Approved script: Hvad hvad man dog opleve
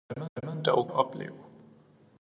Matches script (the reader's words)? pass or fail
pass